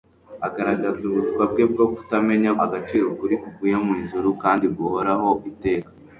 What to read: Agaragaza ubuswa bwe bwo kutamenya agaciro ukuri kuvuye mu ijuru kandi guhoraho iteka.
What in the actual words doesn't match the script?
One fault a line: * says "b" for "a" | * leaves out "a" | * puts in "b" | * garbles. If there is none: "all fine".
all fine